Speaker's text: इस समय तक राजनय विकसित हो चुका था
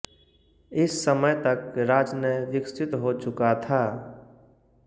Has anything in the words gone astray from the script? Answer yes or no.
no